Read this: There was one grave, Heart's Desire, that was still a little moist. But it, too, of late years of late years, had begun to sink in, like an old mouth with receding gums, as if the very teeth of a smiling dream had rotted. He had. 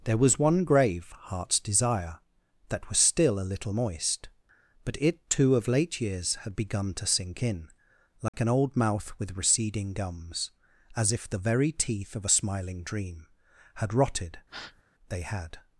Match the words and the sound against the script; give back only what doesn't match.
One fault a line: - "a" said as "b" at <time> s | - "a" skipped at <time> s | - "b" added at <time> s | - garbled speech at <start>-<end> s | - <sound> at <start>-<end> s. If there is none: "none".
- "of late years" skipped at 6.3 s
- dropout at 8.3-8.3 s
- breath at 14.5-14.8 s
- "He" said as "They" at 15.1 s